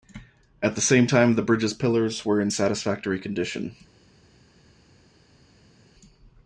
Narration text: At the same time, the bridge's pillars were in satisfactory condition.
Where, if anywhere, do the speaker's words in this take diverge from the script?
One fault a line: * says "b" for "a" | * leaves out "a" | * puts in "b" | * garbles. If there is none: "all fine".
all fine